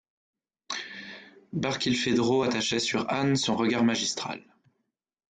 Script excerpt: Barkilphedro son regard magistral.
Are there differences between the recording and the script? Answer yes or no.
yes